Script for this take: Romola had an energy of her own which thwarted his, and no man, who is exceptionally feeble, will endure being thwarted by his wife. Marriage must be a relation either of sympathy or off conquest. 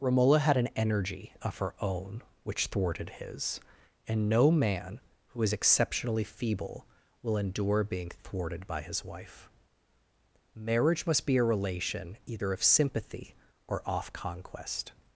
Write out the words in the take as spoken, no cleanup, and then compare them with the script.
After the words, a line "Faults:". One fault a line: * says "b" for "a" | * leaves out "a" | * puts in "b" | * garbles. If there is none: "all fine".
Romola had an energy of her own which thwarted his, and no man, who is exceptionally feeble, will endure being thwarted by his wife. Marriage must be a relation either of sympathy or off conquest.
Faults:
all fine